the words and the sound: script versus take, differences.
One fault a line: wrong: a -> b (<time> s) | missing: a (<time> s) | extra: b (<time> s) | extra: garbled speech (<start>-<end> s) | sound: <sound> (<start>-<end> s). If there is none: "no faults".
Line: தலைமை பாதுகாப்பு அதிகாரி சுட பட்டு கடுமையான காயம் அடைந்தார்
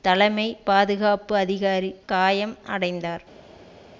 missing: சுட பட்டு கடுமையான (1.9 s)